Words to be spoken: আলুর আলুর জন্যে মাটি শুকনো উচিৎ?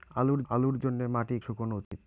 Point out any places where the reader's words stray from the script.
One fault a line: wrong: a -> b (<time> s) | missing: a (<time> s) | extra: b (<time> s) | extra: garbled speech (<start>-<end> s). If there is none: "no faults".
no faults